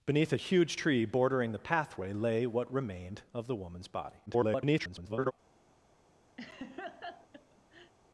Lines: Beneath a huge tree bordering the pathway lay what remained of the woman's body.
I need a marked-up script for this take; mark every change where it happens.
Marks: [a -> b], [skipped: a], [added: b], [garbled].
Beneath a huge tree bordering the pathway lay what remained of the woman's body. [garbled]